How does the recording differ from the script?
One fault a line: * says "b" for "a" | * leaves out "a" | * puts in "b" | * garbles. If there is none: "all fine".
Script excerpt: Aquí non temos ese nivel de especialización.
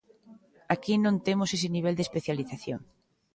all fine